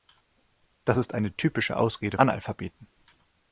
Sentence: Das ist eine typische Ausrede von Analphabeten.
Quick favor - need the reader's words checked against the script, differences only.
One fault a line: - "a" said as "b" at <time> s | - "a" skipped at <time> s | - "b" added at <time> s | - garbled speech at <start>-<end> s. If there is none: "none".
- "von" skipped at 2.2 s